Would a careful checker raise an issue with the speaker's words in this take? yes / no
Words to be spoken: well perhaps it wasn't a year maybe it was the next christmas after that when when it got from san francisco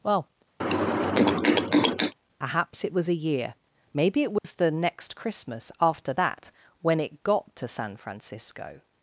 yes